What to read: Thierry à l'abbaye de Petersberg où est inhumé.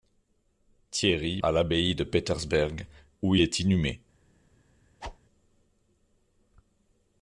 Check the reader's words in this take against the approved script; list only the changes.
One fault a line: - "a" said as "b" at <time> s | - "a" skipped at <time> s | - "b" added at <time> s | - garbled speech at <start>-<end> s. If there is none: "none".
none